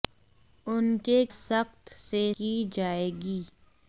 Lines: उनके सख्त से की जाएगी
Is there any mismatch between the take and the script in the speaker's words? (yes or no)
no